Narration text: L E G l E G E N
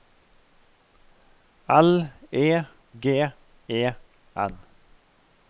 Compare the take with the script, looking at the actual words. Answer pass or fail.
fail